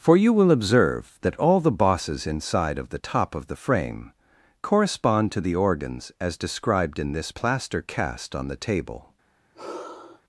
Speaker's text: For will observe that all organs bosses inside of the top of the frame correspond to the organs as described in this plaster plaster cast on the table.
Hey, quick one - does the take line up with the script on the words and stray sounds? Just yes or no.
no